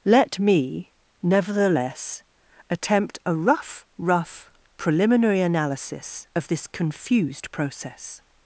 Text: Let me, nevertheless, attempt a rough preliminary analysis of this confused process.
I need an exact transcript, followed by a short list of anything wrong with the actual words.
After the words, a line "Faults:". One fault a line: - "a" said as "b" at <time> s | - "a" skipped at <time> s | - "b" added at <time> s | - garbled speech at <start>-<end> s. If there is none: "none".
Let me, nevertheless, attempt a rough rough preliminary analysis of this confused process.
Faults:
- "rough" added at 4.0 s